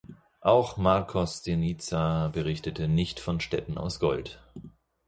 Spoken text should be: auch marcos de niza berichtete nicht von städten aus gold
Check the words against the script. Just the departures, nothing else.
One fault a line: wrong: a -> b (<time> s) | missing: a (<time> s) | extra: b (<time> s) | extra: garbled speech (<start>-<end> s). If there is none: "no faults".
no faults